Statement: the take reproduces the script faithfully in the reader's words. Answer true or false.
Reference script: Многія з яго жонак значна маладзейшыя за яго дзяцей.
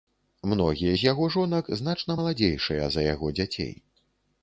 true